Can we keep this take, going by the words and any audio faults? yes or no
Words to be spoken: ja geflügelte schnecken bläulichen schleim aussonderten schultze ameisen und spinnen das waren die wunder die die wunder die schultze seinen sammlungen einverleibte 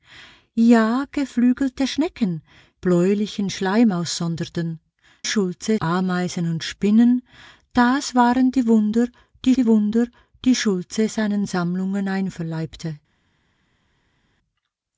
yes